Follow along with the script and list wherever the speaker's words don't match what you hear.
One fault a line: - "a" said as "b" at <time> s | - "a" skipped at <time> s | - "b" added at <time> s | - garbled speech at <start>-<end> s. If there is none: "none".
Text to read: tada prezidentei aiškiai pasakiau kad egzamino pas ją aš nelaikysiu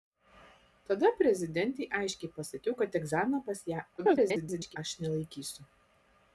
- garbled speech at 4.0-4.8 s